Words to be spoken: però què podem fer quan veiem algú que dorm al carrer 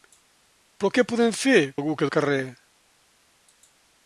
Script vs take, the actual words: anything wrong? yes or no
yes